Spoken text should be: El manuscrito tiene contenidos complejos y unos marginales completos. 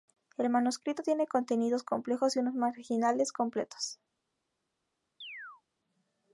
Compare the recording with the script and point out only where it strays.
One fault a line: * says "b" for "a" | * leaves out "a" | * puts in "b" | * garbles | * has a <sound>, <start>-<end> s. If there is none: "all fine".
* has a chirp, 5.2-5.6 s